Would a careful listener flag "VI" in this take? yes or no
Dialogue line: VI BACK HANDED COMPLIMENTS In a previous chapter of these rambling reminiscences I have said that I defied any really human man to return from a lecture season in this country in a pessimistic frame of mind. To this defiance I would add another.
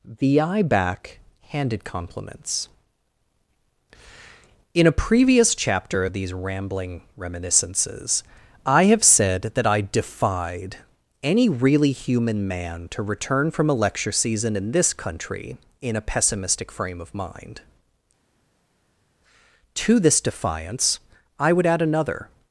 yes